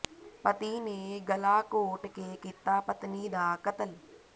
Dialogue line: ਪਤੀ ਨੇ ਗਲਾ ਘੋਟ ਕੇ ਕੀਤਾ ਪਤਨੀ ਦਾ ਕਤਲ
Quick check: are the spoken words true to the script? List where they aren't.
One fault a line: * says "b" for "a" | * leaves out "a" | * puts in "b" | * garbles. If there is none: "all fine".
all fine